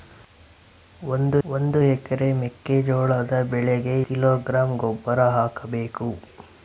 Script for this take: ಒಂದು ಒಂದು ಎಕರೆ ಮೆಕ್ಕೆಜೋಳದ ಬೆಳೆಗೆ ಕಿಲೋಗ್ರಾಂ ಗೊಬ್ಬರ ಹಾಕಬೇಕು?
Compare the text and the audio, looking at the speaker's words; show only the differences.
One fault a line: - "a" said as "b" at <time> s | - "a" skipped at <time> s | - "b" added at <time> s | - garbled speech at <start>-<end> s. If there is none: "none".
none